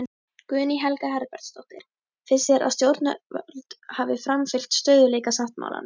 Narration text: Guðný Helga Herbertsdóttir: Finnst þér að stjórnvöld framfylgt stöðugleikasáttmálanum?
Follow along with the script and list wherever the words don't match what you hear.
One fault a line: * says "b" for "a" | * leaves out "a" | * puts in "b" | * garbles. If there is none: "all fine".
* puts in "hafi"